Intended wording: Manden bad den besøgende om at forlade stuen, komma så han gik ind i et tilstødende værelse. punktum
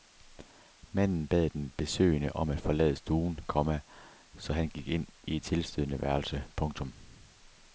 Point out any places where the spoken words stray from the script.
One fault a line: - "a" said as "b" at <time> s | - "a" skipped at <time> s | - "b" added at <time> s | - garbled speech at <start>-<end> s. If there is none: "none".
none